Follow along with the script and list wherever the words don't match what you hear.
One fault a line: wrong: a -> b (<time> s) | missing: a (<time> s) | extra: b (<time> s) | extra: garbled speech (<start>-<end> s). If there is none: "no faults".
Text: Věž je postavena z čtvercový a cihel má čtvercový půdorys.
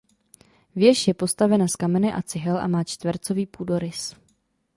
wrong: čtvercový -> kamene (1.7 s)
extra: a (2.6 s)